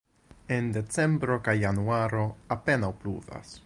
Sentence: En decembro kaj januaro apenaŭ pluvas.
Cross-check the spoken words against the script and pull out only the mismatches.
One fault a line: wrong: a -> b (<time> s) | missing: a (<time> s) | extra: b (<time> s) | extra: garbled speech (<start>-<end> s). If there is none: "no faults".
no faults